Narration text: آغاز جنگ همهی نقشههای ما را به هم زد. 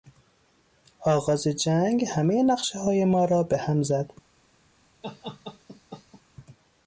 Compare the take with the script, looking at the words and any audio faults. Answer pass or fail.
fail